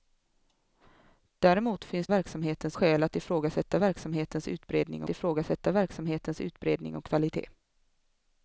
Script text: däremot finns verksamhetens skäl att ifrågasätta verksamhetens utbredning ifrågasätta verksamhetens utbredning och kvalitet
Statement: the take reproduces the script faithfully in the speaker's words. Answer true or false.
true